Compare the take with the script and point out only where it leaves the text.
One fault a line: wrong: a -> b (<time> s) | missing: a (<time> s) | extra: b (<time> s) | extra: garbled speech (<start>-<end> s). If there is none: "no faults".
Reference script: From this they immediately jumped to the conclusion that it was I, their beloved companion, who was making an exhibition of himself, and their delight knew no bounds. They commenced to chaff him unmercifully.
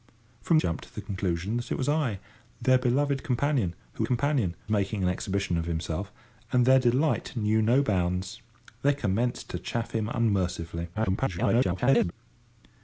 missing: this they immediately (0.6 s)
wrong: was -> companion (4.0 s)
extra: garbled speech (10.9-12.1 s)